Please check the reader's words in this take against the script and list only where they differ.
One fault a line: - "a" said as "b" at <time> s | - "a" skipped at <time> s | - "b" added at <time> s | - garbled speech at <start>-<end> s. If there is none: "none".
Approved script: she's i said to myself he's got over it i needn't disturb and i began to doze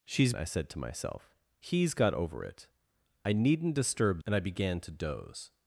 none